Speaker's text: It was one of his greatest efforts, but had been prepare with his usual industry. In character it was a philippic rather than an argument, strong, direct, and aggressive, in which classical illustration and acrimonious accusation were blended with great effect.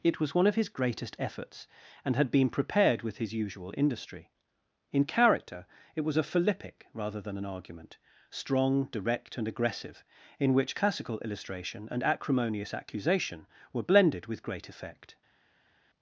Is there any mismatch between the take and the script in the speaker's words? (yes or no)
yes